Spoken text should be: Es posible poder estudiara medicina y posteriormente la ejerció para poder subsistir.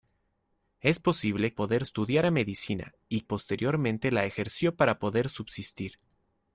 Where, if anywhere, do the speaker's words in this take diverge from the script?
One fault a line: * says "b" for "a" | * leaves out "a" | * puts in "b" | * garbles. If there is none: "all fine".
all fine